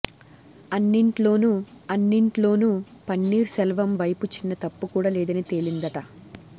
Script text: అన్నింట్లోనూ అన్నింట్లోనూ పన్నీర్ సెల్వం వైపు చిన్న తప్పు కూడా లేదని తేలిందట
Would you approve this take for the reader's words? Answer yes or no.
yes